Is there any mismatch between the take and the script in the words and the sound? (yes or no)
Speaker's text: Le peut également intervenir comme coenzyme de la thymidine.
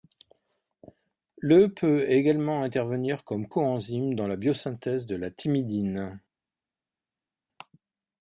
yes